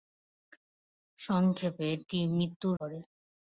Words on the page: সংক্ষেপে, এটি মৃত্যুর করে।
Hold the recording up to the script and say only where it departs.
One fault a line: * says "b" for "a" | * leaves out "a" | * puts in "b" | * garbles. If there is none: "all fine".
all fine